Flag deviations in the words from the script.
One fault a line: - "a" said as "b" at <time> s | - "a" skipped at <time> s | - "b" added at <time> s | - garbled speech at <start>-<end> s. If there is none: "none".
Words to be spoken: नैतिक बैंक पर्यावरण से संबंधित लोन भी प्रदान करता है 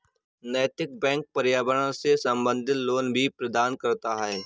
none